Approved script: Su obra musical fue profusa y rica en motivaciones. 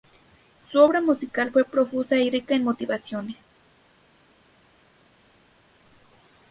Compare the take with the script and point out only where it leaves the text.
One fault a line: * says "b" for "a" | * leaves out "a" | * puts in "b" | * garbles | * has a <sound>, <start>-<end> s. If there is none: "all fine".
all fine